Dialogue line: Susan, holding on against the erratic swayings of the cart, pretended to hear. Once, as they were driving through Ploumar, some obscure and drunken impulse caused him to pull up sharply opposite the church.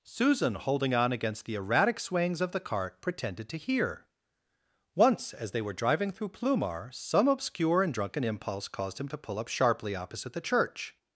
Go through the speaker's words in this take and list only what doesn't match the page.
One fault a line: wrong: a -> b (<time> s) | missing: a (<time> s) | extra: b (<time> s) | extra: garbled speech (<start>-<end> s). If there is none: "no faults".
no faults